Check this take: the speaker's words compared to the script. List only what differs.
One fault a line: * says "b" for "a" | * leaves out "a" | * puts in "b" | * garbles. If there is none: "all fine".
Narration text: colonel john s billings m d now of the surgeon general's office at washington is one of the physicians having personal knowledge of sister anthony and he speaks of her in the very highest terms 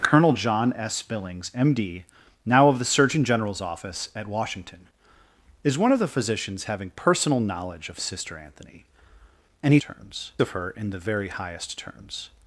* says "terms" for "speaks"